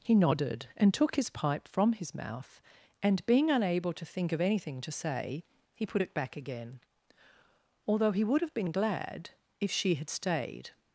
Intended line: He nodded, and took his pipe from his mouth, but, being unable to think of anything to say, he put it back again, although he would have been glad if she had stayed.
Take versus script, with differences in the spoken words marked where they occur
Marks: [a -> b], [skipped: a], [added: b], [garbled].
He nodded, and took his pipe from his mouth, [but, -> and] being unable to think of anything to say, he put it back again, although he would have been glad if she had stayed.